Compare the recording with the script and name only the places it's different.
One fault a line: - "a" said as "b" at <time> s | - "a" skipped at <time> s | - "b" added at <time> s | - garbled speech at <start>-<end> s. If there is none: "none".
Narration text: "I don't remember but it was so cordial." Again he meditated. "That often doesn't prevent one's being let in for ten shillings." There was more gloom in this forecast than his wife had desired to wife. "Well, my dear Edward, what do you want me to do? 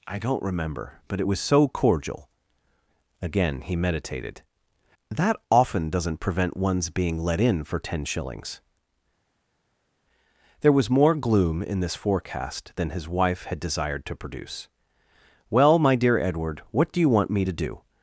- "wife" said as "produce" at 14.2 s